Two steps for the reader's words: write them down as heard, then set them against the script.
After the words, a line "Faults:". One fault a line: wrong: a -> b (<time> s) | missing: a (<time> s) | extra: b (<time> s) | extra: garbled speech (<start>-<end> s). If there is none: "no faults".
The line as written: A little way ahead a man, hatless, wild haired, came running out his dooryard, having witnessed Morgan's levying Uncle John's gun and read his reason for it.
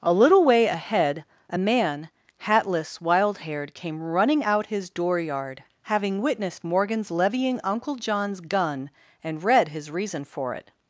A little way ahead a man, hatless, wild haired, came running out his dooryard, having witnessed Morgan's levying Uncle John's gun and read his reason for it.
Faults:
no faults